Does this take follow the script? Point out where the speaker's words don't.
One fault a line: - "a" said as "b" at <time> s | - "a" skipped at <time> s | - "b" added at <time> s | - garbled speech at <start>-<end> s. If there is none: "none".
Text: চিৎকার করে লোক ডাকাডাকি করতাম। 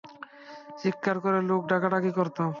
none